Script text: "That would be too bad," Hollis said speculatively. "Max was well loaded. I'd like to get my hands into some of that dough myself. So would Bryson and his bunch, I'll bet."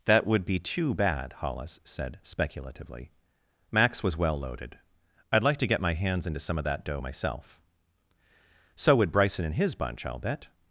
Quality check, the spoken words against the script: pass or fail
pass